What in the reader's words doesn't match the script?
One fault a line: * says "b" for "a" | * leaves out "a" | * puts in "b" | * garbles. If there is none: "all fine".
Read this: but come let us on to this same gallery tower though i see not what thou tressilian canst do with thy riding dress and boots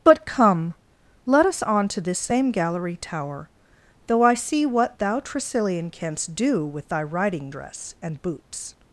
* leaves out "not"